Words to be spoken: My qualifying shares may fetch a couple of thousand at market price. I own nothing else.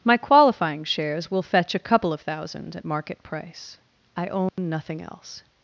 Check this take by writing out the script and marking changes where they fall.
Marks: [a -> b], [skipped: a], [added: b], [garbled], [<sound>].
My qualifying shares [may -> will] fetch a couple of thousand at market price. I own [dropout] nothing else.